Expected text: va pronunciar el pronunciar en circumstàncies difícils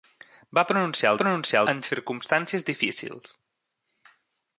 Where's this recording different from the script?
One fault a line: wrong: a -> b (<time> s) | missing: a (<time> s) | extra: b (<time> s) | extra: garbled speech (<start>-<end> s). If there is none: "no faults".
no faults